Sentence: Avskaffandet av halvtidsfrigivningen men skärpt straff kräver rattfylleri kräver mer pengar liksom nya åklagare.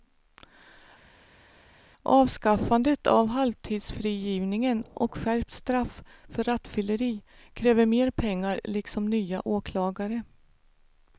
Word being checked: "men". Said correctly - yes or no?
no